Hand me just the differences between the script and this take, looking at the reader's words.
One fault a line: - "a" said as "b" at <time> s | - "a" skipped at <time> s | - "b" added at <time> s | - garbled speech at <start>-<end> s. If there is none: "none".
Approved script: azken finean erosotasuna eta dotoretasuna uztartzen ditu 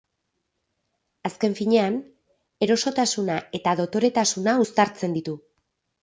none